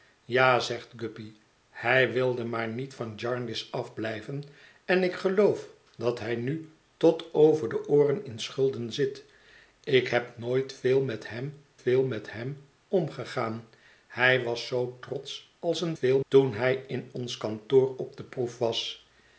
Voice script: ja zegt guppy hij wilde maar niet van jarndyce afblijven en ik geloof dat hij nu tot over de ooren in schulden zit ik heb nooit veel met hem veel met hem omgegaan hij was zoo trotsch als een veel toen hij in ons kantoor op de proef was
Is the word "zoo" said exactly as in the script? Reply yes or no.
yes